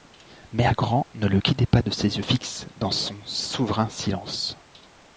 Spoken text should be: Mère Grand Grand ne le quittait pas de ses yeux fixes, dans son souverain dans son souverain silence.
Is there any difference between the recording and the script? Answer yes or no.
yes